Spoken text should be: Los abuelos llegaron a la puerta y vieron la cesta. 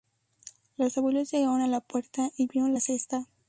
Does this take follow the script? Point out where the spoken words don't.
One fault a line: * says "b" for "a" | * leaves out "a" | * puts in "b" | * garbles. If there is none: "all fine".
all fine